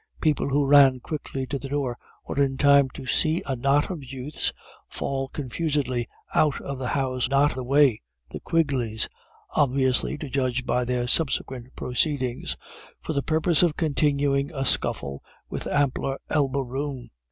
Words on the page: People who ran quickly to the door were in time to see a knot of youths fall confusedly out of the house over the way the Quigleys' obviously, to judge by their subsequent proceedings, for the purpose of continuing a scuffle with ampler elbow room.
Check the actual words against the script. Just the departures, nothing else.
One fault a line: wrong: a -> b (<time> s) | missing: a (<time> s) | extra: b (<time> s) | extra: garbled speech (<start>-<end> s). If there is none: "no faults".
wrong: over -> knot (7.2 s)